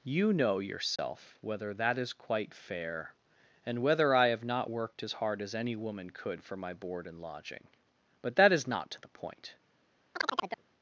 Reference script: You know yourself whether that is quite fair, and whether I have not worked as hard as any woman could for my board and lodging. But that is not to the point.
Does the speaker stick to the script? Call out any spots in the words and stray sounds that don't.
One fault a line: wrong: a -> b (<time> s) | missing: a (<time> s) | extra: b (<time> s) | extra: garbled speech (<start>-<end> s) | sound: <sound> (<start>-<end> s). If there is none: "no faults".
sound: dropout (1.0-1.0 s)
sound: chirp (10.1-10.6 s)